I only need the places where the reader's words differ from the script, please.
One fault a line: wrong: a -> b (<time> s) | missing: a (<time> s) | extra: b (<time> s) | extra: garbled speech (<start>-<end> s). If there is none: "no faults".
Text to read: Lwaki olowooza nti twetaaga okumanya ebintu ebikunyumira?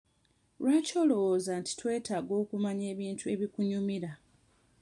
no faults